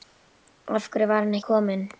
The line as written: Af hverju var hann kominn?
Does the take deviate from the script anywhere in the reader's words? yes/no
no